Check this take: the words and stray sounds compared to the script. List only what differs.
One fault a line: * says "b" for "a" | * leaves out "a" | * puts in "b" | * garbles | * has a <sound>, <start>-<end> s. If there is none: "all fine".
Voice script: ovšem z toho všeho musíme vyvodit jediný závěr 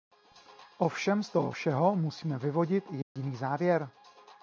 * has a dropout, 3.0-3.2 s